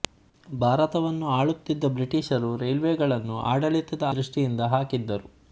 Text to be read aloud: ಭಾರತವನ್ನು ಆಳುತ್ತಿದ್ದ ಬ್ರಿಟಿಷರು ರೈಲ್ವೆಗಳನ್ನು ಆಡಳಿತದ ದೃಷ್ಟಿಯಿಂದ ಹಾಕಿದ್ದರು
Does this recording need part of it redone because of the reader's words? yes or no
no